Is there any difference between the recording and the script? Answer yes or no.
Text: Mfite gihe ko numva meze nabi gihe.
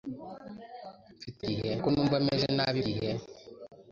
no